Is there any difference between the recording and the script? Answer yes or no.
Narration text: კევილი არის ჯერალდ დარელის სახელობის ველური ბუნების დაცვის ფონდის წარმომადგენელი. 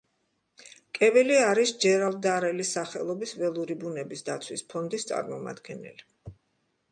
no